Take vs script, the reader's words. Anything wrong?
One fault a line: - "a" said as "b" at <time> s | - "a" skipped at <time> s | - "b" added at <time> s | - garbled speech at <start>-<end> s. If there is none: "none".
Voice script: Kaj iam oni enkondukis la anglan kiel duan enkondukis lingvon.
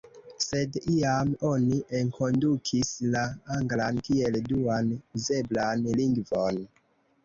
- "Kaj" said as "Sed" at 0.4 s
- "enkondukis" said as "uzeblan" at 5.0 s